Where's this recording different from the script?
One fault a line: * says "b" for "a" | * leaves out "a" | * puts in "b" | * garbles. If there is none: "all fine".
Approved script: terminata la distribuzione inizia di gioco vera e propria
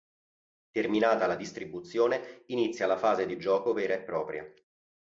* puts in "la fase"